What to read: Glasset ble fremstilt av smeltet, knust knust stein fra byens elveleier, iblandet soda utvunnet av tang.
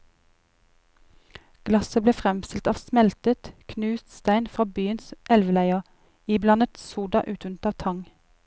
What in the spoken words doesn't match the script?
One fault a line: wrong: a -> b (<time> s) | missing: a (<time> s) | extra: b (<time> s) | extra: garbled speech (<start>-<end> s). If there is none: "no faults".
missing: knust (4.1 s)